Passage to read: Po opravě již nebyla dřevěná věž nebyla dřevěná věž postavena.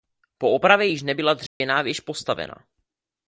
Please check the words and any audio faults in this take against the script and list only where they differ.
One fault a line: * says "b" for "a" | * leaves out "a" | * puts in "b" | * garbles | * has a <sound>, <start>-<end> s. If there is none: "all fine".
* has a dropout, 1.5-1.6 s
* leaves out "nebyla dřevěná věž"